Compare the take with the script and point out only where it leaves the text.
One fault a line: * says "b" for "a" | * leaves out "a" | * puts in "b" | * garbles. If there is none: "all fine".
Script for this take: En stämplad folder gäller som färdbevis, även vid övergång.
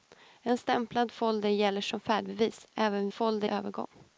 * says "folder" for "vid"